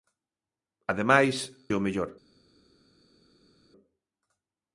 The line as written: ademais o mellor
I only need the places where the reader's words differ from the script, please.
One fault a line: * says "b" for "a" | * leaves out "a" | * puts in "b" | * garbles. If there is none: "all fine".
all fine